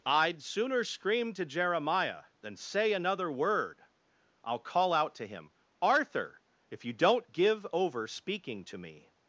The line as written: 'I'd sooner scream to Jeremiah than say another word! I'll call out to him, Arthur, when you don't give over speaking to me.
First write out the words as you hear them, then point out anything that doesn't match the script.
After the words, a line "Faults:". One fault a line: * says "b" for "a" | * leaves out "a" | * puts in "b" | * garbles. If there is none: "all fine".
'I'd sooner scream to Jeremiah than say another word! I'll call out to him, Arthur, if you don't give over speaking to me.
Faults:
* says "if" for "when"